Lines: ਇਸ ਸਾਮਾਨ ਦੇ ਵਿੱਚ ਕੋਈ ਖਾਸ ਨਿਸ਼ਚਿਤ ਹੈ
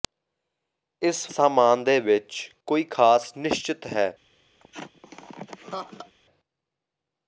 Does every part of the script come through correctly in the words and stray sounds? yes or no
no